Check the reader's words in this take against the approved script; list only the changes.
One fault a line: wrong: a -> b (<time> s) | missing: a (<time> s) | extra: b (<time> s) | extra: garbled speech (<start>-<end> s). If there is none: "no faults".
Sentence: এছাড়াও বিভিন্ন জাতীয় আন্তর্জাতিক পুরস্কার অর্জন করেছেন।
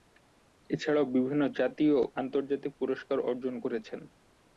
no faults